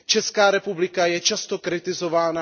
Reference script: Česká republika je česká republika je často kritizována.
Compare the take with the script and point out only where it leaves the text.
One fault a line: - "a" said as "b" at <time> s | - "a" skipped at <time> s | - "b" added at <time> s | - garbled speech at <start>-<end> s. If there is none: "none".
- "česká republika je" skipped at 1.2 s